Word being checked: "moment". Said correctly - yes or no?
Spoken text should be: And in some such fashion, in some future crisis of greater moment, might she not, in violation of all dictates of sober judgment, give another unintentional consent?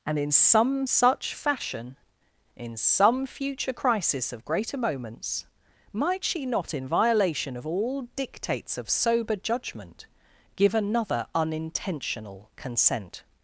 no